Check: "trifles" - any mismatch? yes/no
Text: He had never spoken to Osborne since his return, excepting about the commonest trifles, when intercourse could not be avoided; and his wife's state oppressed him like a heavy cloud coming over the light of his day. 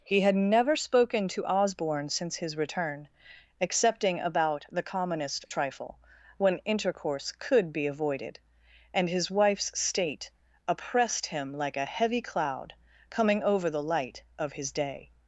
yes